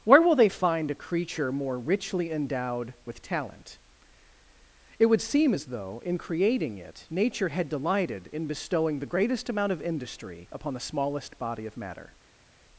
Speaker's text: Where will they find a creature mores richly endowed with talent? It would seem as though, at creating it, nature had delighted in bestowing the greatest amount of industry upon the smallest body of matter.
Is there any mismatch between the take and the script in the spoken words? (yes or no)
yes